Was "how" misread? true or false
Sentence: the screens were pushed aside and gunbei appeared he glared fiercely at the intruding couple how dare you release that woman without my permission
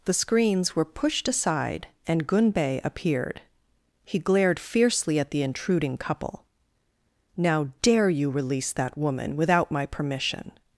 true